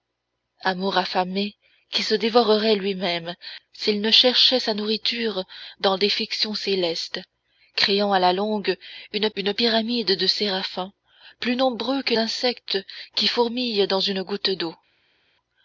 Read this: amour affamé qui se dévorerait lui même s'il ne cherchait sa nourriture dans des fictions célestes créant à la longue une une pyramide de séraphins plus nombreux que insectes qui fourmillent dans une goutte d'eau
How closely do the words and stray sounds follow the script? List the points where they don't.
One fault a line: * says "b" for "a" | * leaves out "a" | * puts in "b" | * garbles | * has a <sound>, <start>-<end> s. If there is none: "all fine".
all fine